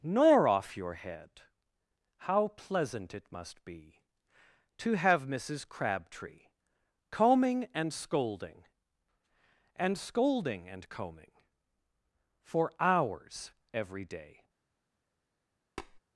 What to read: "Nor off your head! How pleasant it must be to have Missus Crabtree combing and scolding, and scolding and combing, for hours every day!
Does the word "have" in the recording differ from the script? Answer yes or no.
no